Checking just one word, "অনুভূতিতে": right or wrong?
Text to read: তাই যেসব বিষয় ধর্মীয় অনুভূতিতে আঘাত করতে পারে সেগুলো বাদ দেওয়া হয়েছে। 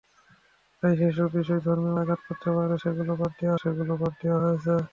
wrong